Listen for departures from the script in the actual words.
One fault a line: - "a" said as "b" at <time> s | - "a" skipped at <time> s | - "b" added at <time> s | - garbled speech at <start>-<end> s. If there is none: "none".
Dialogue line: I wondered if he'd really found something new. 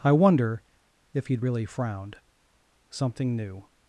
- "wondered" said as "wonder" at 0.1 s
- "found" said as "frowned" at 1.7 s